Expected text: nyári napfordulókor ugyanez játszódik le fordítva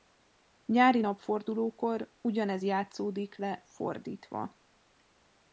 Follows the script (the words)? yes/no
yes